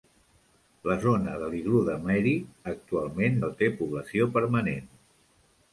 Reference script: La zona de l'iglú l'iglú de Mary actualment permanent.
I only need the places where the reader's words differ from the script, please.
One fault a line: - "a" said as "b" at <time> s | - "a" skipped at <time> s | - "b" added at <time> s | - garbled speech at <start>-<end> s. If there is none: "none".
- "l'iglú" skipped at 1.8 s
- "no té població" added at 3.4 s